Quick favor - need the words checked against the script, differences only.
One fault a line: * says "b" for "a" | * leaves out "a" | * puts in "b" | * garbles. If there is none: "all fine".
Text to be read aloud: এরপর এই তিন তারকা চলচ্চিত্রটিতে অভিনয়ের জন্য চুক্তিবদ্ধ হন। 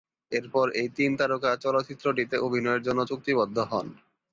all fine